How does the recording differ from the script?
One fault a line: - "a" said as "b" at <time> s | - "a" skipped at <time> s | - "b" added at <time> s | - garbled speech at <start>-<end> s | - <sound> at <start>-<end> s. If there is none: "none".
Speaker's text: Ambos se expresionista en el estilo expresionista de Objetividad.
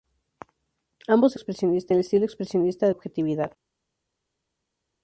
none